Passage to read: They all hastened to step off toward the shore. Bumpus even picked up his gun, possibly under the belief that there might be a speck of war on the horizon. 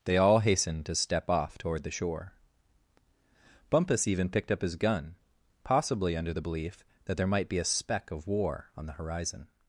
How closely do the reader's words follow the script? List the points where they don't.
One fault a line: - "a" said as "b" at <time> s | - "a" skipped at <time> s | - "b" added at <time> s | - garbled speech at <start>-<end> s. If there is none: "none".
none